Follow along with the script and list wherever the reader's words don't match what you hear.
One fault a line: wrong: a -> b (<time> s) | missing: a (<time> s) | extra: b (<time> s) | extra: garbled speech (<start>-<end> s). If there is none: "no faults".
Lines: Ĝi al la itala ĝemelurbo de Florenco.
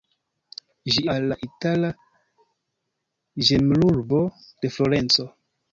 no faults